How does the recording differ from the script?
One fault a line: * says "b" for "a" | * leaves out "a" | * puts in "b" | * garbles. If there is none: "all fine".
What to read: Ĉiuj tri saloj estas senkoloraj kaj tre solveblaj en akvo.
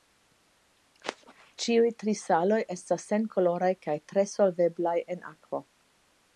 all fine